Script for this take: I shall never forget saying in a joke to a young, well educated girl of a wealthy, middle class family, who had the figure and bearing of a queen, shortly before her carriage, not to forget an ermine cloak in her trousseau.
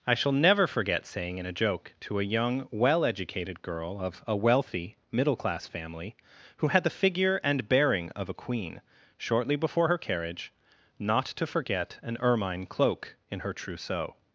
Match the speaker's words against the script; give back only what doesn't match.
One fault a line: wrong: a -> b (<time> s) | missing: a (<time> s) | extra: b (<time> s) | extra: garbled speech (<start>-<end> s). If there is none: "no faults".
no faults